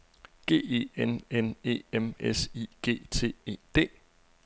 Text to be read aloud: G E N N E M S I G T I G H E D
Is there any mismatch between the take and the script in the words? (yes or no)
yes